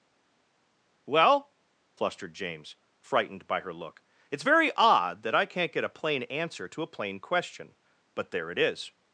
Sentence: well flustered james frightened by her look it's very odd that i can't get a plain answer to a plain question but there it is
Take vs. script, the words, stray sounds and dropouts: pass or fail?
pass